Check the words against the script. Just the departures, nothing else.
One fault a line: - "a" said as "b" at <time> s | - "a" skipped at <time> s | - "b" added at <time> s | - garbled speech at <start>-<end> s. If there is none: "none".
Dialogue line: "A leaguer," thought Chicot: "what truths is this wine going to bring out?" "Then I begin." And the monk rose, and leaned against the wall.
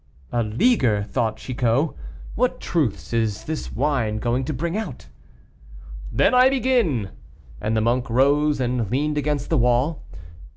none